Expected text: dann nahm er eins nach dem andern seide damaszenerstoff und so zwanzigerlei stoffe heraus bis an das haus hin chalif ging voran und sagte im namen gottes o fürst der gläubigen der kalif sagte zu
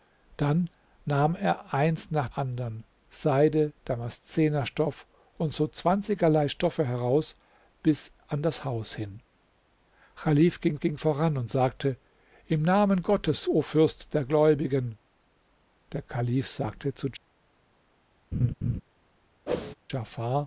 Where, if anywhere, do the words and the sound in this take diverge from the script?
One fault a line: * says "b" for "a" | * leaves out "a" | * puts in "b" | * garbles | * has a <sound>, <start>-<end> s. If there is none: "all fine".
* leaves out "dem"
* puts in "ging"
* has a laugh, 18.3-18.8 s
* has a whoosh, 19.5-19.8 s